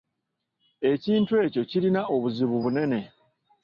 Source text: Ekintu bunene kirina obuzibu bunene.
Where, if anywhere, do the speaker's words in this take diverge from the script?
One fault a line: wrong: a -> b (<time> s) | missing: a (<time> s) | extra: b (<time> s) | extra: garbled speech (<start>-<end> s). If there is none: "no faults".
wrong: bunene -> ekyo (1.5 s)